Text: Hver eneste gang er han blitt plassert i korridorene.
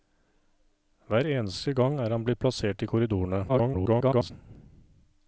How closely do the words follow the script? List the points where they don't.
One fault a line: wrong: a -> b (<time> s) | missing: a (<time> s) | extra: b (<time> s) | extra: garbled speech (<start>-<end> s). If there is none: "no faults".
extra: garbled speech (3.5-4.3 s)